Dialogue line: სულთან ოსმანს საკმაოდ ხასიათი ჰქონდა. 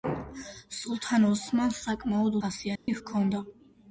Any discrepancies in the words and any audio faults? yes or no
yes